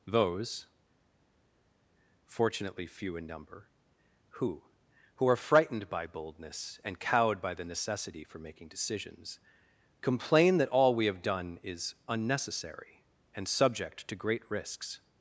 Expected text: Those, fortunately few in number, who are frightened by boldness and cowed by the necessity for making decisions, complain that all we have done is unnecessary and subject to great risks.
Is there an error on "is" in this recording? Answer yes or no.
no